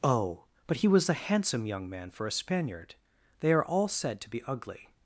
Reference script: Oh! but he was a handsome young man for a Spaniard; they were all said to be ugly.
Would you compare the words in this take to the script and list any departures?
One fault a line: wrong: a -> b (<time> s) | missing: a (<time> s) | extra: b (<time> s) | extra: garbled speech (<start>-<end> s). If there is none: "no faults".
wrong: were -> are (3.5 s)